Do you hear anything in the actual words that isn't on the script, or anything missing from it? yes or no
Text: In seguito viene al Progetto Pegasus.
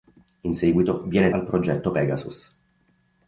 no